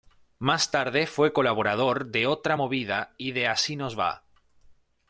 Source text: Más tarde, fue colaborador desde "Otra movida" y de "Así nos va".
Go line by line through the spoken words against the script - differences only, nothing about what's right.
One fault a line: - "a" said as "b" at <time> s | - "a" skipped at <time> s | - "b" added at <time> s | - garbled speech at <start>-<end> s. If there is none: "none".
- "desde" said as "de" at 2.1 s